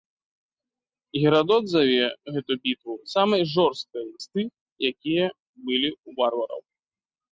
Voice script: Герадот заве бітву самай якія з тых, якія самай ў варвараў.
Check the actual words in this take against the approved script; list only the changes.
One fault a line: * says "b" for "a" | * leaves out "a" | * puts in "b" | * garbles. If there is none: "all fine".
* puts in "гэту"
* says "жорсткай" for "якія"
* says "былі" for "самай"